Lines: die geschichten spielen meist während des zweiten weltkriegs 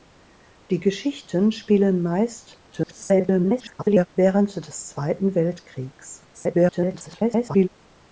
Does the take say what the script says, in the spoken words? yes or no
no